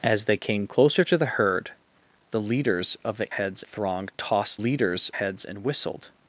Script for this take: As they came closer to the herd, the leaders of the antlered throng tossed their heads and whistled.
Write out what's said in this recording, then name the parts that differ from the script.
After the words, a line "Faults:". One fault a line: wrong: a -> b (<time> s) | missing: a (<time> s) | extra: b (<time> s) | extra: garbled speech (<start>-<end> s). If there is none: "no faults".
As they came closer to the herd, the leaders of the heads throng tossed leaders heads and whistled.
Faults:
wrong: antlered -> heads (3.3 s)
wrong: their -> leaders (4.6 s)